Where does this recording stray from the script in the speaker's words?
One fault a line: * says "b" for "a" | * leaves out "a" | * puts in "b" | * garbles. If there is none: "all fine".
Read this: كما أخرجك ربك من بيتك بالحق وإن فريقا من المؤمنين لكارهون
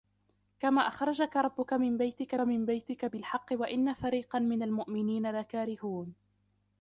* puts in "من بيتك"